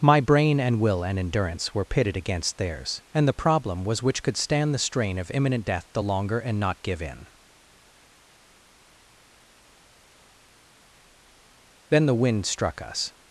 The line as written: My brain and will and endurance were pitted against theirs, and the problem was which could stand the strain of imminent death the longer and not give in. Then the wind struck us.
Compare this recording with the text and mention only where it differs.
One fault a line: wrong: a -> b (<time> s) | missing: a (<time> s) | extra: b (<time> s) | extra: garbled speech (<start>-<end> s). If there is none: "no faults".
no faults